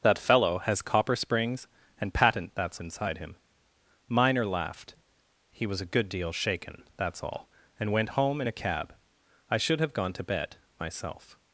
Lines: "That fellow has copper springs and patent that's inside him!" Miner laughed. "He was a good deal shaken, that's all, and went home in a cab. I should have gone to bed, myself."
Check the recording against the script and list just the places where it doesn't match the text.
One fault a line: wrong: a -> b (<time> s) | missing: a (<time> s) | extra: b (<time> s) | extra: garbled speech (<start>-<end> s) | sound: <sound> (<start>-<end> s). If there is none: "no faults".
no faults